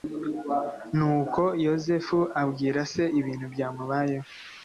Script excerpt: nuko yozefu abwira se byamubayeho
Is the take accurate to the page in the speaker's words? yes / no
no